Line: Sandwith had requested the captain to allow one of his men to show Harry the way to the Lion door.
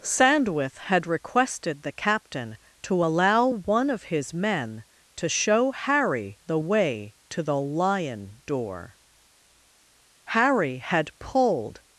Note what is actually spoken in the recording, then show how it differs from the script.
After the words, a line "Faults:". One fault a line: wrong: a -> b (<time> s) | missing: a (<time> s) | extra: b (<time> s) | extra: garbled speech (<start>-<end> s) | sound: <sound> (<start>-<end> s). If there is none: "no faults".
Sandwith had requested the captain to allow one of his men to show Harry the way to the Lion door. Harry had pulled
Faults:
extra: Harry had pulled (10.2 s)